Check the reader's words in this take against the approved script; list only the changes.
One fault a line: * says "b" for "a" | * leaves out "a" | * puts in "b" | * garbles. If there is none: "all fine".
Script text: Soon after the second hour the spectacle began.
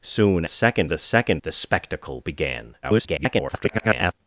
* says "second" for "after"
* leaves out "hour"
* garbles